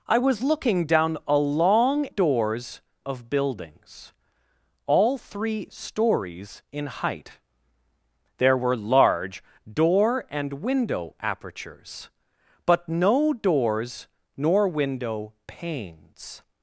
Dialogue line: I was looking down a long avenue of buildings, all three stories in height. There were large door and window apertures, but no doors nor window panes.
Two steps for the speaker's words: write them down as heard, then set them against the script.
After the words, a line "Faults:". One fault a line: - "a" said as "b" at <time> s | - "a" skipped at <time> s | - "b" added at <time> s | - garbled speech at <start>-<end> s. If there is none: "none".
I was looking down a long doors of buildings, all three stories in height. There were large door and window apertures, but no doors nor window panes.
Faults:
- "avenue" said as "doors" at 2.1 s